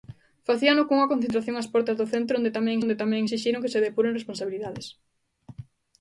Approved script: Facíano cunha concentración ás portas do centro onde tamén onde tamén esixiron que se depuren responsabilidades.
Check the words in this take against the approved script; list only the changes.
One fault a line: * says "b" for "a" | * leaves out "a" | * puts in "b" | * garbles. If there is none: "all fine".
all fine